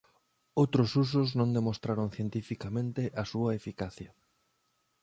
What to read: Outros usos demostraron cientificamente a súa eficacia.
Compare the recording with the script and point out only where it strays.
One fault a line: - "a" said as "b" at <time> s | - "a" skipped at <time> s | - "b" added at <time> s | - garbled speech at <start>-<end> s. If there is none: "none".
- "non" added at 1.4 s